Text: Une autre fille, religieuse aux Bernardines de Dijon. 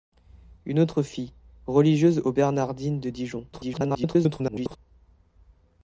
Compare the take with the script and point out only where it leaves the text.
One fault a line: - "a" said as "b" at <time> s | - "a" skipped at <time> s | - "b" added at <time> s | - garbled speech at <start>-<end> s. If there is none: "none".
- garbled speech at 3.5-4.8 s